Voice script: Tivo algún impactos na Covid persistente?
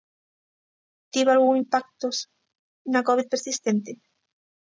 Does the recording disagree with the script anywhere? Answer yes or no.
no